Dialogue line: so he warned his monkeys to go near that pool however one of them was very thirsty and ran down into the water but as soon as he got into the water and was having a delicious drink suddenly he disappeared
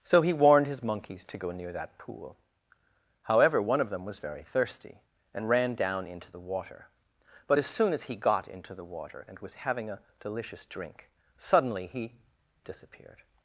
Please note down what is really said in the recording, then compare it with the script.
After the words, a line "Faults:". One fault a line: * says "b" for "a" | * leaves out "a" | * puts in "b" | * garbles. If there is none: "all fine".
so he warned his monkeys to go near that pool however one of them was very thirsty and ran down into the water but as soon as he got into the water and was having a delicious drink suddenly he disappeared
Faults:
all fine